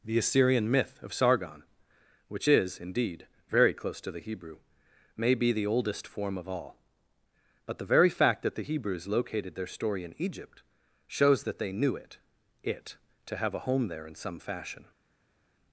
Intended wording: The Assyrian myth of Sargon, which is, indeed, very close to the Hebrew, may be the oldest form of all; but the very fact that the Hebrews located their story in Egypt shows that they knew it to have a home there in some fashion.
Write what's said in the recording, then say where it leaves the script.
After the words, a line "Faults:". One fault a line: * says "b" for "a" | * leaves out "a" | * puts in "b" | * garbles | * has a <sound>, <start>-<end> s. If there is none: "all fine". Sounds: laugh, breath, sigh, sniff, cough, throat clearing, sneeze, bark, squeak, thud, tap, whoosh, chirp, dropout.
The Assyrian myth of Sargon, which is, indeed, very close to the Hebrew, may be the oldest form of all; but the very fact that the Hebrews located their story in Egypt shows that they knew it it to have a home there in some fashion.
Faults:
* puts in "it"